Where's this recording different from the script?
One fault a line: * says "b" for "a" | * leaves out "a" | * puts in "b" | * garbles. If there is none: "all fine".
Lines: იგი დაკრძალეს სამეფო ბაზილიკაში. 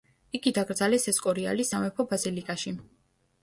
* puts in "ესკორიალის"